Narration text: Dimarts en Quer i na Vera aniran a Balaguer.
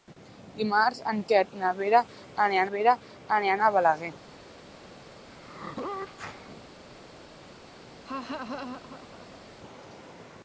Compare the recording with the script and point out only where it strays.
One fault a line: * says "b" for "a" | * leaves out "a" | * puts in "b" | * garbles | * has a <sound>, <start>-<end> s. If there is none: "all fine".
* puts in "Vera aniran"
* has a sneeze, 5.3-6.7 s
* has a laugh, 8.0-9.4 s